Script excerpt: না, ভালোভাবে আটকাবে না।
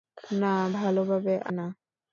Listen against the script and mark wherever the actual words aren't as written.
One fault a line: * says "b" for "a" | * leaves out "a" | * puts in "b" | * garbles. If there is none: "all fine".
* leaves out "আটকাবে"